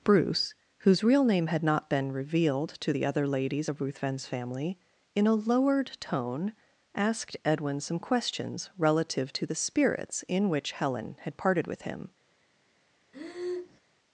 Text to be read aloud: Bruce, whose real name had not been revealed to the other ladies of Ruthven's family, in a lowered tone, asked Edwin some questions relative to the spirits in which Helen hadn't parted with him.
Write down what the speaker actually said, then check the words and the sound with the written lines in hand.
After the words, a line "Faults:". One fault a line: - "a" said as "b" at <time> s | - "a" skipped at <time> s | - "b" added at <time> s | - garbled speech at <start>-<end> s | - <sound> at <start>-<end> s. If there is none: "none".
Bruce, whose real name had not been revealed to the other ladies of Ruthven's family, in a lowered tone, asked Edwin some questions relative to the spirits in which Helen had parted with him.
Faults:
- "hadn't" said as "had" at 11.2 s
- breath at 13.1-13.8 s